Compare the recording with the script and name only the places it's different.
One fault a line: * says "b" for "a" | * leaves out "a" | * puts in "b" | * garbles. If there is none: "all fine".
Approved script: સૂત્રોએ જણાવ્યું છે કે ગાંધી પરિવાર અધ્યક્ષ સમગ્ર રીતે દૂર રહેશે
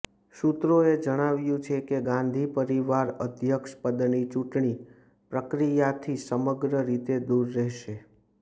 * puts in "પદની ચૂંટણી પ્રક્રિયાથી"